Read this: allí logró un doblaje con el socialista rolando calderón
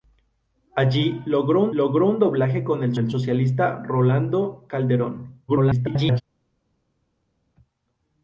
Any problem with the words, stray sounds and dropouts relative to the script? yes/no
yes